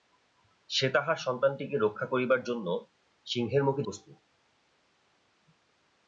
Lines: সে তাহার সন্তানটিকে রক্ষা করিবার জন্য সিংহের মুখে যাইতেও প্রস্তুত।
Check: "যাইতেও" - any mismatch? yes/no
yes